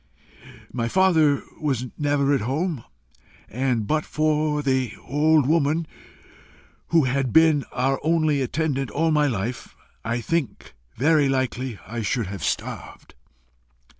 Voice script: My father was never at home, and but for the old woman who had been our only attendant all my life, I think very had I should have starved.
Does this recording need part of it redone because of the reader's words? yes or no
yes